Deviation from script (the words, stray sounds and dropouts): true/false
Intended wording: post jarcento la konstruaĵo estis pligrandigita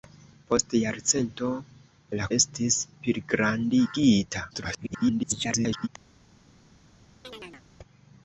true